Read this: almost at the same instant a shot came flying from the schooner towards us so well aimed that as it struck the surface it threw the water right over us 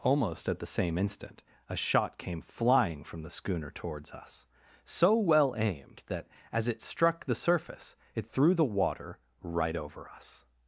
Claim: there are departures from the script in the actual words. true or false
false